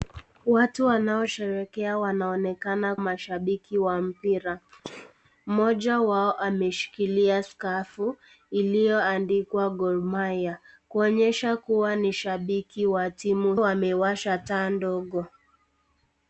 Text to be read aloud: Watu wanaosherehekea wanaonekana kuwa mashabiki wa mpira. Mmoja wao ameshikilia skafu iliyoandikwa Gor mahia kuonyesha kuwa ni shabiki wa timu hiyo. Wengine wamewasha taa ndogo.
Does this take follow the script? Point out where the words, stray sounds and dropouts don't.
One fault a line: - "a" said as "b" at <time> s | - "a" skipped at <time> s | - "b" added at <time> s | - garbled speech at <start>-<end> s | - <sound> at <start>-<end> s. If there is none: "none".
- "kuwa" skipped at 3.0 s
- sneeze at 4.8-5.1 s
- "hiyo Wengine" skipped at 13.5 s